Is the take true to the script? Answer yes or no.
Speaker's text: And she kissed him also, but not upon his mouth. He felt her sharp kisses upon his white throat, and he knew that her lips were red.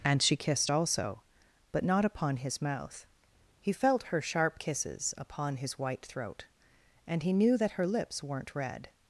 no